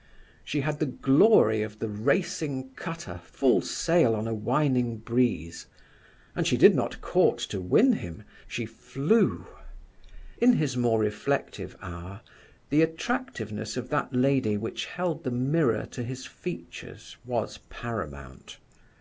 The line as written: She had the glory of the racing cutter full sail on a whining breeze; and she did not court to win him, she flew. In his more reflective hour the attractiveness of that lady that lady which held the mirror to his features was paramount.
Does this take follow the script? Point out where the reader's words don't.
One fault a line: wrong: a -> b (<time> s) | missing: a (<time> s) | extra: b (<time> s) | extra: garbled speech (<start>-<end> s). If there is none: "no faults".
missing: that lady (14.5 s)